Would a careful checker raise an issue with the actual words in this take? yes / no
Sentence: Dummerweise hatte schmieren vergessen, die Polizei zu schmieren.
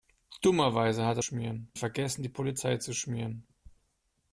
no